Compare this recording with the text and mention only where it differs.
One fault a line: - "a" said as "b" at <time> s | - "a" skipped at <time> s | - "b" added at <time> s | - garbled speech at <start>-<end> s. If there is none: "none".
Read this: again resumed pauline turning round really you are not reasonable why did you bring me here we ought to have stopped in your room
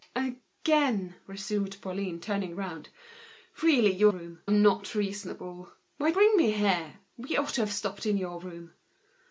- "are" said as "room" at 4.1 s
- "did you" skipped at 6.1 s